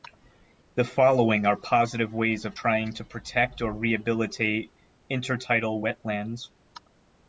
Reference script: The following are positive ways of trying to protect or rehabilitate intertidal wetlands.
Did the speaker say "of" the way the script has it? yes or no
yes